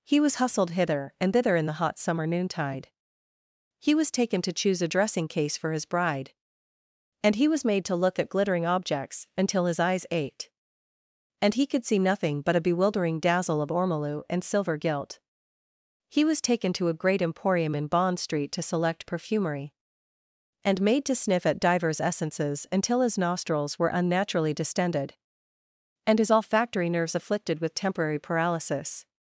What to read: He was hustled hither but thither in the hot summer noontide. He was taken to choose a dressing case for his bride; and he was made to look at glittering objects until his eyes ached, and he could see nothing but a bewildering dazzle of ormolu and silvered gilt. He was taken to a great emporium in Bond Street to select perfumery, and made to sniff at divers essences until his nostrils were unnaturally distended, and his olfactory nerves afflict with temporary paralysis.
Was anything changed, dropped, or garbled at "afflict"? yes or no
yes